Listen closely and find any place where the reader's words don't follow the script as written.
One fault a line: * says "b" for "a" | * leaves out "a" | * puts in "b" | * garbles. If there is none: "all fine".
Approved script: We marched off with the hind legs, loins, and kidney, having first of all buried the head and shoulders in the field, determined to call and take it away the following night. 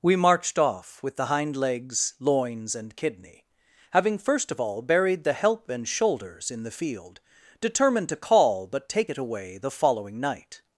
* says "help" for "head"
* says "but" for "and"